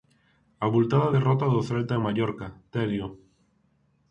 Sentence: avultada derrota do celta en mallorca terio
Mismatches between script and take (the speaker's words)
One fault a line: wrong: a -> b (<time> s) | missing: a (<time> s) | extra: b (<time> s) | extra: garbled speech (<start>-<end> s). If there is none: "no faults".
no faults